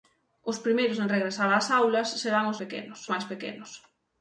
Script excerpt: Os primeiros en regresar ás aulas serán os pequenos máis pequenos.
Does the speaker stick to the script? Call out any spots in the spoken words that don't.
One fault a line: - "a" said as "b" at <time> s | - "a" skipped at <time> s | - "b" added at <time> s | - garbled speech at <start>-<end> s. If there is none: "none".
none